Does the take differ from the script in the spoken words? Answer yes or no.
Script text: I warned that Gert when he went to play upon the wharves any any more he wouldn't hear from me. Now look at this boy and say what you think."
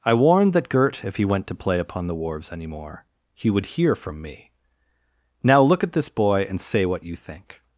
yes